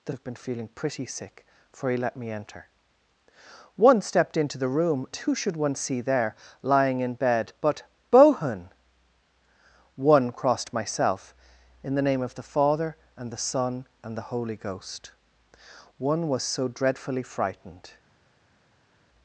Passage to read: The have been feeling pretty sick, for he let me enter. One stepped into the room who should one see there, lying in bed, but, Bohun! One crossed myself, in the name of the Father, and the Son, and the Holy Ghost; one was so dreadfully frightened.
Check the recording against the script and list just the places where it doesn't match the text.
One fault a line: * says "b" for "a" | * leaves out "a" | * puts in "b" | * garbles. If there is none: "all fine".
all fine